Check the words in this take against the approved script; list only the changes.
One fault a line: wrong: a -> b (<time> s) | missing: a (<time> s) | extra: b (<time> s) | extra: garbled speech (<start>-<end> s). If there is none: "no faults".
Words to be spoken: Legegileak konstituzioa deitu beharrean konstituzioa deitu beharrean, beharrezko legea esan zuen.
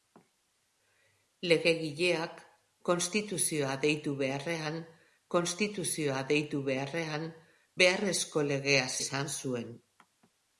no faults